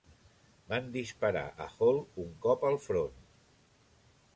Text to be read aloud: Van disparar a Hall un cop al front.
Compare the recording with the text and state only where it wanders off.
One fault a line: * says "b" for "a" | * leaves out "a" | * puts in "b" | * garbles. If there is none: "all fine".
all fine